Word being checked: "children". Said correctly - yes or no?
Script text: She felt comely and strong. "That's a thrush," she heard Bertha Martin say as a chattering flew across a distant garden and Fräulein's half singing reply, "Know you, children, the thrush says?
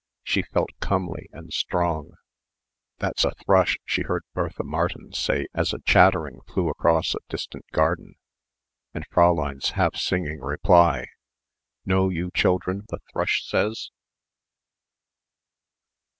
yes